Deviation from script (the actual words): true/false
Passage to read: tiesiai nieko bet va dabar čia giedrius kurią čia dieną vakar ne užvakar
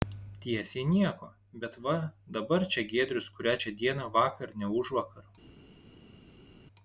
false